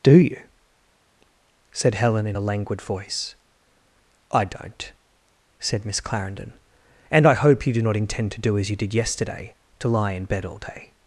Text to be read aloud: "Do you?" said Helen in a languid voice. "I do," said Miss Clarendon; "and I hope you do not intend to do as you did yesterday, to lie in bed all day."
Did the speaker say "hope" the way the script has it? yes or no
yes